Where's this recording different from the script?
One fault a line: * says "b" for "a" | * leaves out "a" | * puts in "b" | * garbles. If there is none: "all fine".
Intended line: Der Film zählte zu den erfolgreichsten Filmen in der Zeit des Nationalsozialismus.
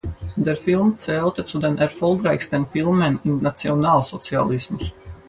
* leaves out "der Zeit des"